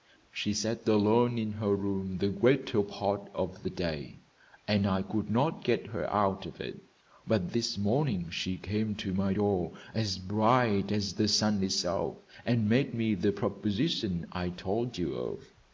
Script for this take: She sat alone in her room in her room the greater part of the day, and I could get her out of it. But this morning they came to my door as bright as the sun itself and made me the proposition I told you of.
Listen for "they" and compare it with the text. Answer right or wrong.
wrong